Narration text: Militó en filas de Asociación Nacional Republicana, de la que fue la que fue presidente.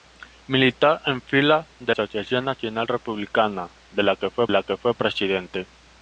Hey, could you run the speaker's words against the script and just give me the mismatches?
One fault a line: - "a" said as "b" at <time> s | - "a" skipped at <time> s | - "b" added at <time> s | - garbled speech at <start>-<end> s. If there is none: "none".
none